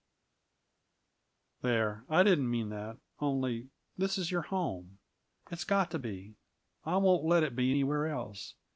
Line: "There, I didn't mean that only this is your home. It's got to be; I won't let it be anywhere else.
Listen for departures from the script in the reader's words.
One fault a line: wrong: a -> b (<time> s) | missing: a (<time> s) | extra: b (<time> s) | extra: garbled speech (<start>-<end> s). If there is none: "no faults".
no faults